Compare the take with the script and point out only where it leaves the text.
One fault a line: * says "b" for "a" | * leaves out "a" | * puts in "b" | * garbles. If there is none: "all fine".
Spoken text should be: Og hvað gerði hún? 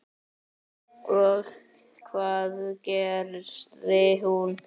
all fine